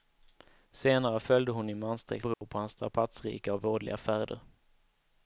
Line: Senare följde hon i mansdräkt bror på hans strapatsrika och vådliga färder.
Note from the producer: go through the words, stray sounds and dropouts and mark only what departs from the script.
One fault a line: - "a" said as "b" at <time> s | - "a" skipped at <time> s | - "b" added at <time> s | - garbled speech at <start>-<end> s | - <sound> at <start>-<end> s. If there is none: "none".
- dropout at 2.3-2.4 s